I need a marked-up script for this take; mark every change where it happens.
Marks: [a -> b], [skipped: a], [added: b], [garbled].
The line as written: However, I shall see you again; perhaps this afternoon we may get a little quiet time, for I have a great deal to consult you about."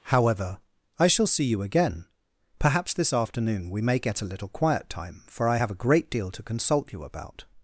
However, I shall see you again; perhaps this afternoon we may get a little quiet time, for I have a great deal to consult you about."